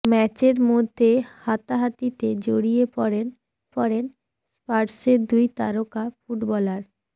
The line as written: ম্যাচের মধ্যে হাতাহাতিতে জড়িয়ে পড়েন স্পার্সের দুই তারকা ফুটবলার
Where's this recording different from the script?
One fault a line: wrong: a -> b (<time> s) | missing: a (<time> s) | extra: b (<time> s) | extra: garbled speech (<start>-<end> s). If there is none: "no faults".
extra: পড়েন (3.7 s)